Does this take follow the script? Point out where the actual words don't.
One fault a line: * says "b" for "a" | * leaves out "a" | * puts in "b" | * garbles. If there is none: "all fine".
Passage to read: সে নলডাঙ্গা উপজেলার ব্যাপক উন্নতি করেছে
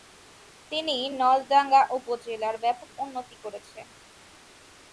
* says "তিনি" for "সে"